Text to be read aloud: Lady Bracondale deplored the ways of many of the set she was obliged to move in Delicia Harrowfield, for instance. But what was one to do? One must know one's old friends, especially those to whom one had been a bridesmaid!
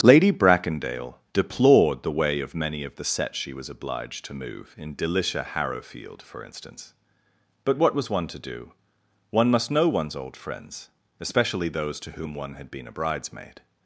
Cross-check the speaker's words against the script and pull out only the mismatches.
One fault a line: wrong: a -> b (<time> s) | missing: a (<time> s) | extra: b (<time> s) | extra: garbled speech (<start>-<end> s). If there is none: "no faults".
wrong: ways -> way (2.1 s)